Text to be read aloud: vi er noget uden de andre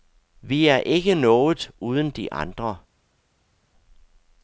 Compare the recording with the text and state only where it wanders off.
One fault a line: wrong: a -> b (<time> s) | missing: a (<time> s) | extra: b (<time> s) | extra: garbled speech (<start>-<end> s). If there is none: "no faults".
extra: ikke (0.8 s)